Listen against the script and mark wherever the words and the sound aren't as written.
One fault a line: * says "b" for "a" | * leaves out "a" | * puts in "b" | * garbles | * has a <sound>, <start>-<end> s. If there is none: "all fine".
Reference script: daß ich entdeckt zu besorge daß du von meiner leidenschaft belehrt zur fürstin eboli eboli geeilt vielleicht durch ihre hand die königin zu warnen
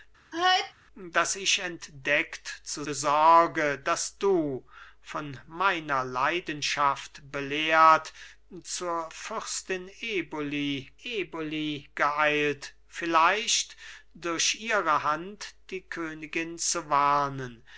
* has a sneeze, 0.3-0.7 s